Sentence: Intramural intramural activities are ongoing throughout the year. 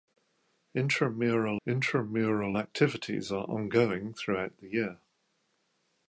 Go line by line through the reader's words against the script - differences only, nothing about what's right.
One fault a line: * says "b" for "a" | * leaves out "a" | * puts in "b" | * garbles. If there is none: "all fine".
all fine